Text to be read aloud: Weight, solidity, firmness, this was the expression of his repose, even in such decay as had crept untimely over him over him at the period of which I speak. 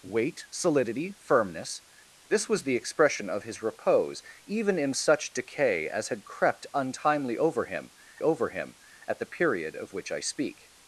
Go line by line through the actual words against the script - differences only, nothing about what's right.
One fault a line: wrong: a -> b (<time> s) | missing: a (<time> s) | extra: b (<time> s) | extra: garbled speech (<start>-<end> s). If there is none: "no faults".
no faults